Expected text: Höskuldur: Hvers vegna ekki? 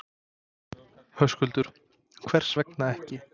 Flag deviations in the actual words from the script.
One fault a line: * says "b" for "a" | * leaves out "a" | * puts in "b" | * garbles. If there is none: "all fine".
all fine